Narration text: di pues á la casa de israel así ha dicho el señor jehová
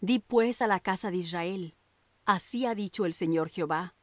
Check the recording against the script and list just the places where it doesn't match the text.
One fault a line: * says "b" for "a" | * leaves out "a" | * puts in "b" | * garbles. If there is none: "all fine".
all fine